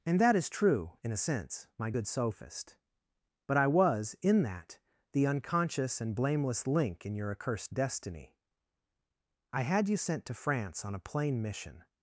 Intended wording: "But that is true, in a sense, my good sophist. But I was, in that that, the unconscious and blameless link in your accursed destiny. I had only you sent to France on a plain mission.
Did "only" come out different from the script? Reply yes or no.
yes